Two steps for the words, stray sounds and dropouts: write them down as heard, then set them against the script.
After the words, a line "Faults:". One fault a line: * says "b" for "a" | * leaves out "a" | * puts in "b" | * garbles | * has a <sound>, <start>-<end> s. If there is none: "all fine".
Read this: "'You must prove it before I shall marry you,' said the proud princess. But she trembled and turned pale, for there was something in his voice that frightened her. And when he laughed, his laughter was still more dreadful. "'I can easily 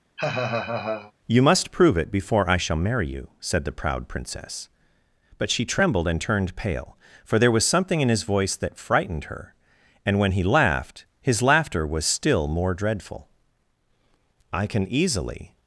"'You must prove it before I shall marry you,' said the proud princess. But she trembled and turned pale, for there was something in his voice that frightened her. And when he laughed, his laughter was still more dreadful. "'I can easily
Faults:
* has a laugh, 0.2-1.1 s